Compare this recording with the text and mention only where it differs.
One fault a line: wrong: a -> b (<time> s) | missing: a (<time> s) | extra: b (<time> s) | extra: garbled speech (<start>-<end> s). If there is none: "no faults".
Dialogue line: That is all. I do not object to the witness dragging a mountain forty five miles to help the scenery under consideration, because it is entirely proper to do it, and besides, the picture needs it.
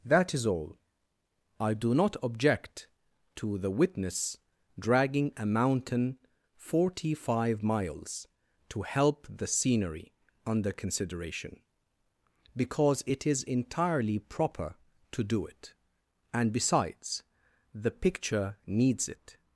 no faults